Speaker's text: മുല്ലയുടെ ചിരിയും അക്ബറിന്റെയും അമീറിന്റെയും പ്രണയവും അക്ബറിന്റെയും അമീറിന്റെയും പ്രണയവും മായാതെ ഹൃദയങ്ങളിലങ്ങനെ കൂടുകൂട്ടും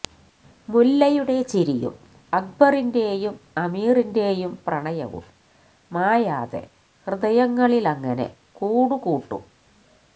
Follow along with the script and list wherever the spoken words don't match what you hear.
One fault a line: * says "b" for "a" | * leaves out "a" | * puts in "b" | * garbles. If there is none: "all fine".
* leaves out "അക്ബറിന്റെയും അമീറിന്റെയും പ്രണയവും"